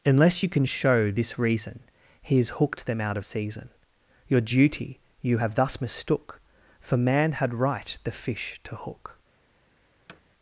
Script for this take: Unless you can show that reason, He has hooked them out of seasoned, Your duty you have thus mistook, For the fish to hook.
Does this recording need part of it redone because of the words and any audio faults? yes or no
yes